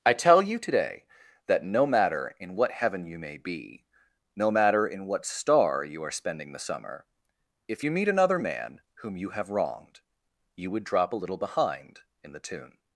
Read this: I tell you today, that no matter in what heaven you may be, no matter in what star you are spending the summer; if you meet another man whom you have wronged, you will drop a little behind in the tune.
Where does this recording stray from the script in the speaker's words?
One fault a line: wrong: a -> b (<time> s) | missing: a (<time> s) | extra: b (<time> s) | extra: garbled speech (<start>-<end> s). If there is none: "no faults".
wrong: will -> would (10.7 s)